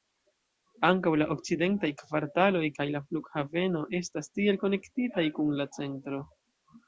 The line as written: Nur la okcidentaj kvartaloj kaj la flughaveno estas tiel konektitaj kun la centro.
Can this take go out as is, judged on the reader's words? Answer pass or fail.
fail